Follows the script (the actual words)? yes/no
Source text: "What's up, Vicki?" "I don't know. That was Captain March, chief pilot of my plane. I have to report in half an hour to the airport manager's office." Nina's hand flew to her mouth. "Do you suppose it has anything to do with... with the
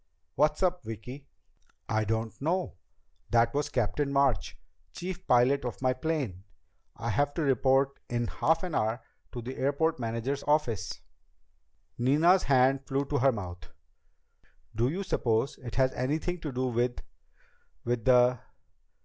yes